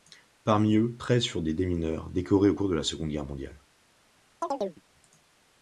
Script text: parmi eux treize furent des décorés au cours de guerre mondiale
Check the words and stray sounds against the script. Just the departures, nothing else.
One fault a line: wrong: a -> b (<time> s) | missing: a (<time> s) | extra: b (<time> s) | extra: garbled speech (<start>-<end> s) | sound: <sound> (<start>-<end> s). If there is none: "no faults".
extra: démineurs (1.5 s)
extra: la seconde (2.7 s)
sound: chirp (4.4-4.8 s)